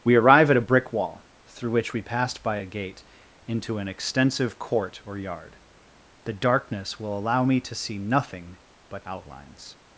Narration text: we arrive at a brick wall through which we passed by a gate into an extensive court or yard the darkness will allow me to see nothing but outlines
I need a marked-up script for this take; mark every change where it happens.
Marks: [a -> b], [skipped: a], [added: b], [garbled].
we arrive at a brick wall through which we passed by a gate into an extensive court or yard the darkness will allow me to see nothing but outlines